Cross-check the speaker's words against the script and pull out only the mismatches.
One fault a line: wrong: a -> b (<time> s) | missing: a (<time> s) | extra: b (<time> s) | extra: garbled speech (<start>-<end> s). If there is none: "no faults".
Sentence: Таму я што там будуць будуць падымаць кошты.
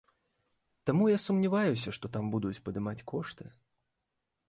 extra: сумняваюся (1.2 s)
missing: будуць (2.6 s)